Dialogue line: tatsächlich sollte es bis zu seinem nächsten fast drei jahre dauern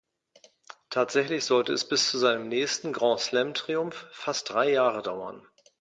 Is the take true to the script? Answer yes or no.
no